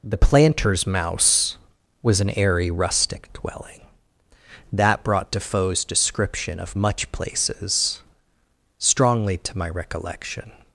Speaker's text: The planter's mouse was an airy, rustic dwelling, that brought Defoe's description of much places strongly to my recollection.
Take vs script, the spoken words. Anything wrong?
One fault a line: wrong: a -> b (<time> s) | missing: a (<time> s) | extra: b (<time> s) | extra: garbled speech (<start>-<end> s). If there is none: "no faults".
no faults